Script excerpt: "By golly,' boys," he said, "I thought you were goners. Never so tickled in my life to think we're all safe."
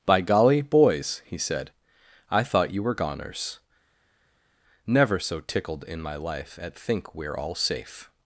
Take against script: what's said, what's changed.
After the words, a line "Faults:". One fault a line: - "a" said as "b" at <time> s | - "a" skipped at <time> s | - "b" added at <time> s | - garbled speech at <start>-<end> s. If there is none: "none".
"By golly,' boys," he said, "I thought you were goners. Never so tickled in my life at think we're all safe."
Faults:
- "to" said as "at" at 6.6 s